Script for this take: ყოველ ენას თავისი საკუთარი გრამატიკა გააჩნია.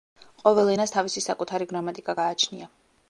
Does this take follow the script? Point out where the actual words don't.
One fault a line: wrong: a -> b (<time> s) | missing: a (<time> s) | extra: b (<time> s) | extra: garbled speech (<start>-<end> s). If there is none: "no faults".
no faults